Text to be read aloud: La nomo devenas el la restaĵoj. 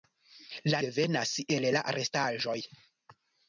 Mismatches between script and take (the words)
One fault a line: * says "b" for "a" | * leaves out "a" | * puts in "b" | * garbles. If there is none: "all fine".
* leaves out "nomo"